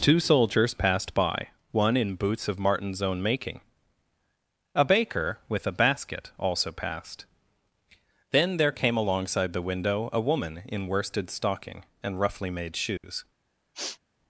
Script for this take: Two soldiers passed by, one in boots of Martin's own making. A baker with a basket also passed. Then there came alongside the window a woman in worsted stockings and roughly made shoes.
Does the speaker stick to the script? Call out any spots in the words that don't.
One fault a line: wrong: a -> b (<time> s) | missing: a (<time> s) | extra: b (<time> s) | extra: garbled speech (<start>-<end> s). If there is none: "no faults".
wrong: stockings -> stocking (11.3 s)